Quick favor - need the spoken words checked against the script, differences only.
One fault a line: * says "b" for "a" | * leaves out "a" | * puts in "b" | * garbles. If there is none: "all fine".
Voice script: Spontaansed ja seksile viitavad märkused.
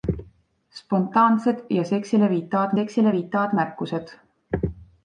* puts in "seksile viitavad"